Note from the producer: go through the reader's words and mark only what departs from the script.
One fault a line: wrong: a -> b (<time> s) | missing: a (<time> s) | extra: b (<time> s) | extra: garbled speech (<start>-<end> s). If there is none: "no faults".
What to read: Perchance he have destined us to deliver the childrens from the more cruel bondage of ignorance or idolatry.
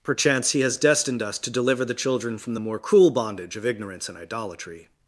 wrong: have -> has (0.6 s)
wrong: childrens -> children (1.9 s)
wrong: or -> and (4.1 s)